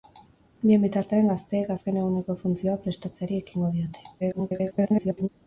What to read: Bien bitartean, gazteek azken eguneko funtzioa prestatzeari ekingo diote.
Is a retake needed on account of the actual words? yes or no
yes